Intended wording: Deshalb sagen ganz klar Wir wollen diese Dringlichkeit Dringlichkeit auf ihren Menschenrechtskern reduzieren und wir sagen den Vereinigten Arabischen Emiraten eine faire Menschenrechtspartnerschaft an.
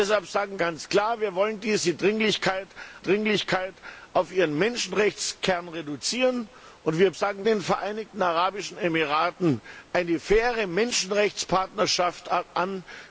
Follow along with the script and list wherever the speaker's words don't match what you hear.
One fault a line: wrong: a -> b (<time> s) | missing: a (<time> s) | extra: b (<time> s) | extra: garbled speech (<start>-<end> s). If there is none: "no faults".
no faults